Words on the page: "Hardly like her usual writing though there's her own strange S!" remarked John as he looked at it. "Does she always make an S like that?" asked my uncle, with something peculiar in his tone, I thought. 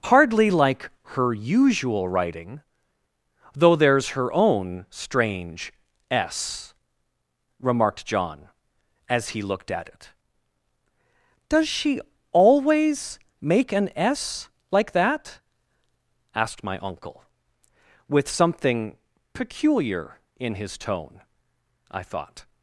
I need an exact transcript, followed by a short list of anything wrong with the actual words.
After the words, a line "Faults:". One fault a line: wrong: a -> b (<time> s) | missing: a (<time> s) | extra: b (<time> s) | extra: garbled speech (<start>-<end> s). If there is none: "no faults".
"Hardly like her usual writing though there's her own strange S!" remarked John as he looked at it. "Does she always make an S like that?" asked my uncle, with something peculiar in his tone, I thought.
Faults:
no faults